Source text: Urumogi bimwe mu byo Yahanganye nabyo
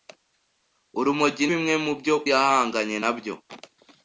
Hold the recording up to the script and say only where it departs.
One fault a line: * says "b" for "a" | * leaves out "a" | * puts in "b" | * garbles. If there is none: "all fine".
all fine